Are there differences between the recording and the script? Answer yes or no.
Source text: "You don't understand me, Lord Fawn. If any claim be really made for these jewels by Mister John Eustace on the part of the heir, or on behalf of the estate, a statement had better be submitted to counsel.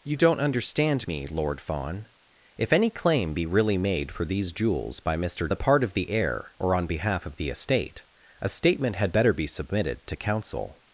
yes